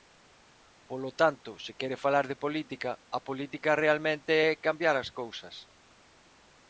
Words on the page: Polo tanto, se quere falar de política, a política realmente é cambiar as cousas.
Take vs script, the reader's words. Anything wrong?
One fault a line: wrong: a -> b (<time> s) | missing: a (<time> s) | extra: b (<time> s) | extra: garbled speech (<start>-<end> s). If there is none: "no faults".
no faults